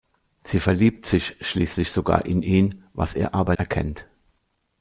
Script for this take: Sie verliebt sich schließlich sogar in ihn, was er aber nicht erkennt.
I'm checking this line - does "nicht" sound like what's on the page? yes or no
no